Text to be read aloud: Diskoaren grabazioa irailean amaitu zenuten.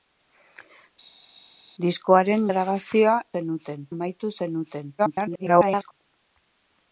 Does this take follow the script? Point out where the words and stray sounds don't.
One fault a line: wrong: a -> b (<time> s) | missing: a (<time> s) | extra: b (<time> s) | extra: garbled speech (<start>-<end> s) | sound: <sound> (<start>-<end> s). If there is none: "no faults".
wrong: irailean -> zenuten (3.3 s)
extra: garbled speech (5.0-5.9 s)